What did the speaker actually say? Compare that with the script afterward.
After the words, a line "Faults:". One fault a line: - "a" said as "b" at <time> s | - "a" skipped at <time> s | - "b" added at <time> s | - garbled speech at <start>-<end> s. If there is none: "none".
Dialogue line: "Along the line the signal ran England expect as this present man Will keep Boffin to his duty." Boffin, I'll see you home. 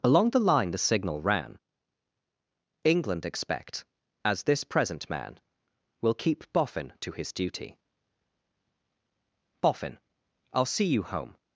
"Along the line the signal ran England expect as this present man Will keep Boffin to his duty." Boffin, I'll see you home.
Faults:
none